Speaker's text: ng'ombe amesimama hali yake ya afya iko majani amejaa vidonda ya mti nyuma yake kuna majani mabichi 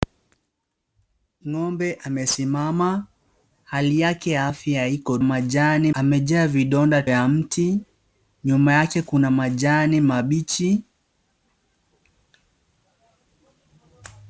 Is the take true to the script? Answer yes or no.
yes